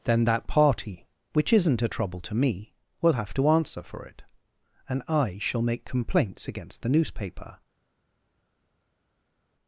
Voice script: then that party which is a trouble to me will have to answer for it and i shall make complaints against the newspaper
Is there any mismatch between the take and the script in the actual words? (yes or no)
yes